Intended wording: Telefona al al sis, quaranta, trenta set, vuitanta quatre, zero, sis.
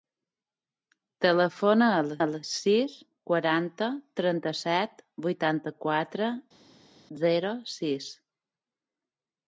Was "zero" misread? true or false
false